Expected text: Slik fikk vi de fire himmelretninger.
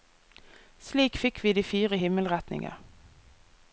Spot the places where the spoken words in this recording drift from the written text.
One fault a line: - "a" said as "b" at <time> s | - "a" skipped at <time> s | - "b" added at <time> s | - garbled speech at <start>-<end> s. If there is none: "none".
none